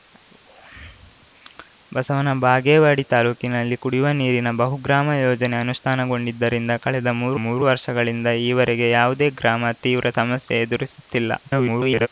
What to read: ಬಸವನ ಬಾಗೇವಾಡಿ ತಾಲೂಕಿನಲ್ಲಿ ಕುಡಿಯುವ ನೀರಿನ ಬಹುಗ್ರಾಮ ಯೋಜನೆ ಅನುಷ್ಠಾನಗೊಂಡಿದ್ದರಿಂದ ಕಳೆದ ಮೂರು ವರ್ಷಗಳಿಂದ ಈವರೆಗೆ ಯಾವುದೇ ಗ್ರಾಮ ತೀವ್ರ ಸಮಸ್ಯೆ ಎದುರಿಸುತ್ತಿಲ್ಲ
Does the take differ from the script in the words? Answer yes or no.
yes